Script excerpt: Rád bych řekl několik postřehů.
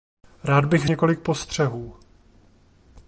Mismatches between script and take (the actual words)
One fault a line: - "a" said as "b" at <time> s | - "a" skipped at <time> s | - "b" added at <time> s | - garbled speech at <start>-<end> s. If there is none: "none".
- "řekl" skipped at 0.9 s